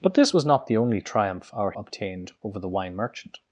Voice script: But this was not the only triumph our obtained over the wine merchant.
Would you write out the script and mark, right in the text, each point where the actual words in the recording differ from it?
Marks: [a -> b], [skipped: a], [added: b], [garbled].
But this was not the only triumph our obtained over the wine merchant.